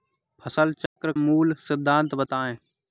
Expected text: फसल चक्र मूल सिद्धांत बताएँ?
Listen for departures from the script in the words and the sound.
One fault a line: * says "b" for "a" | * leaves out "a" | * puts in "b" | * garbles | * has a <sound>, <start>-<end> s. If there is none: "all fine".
* has a dropout, 0.9-1.0 s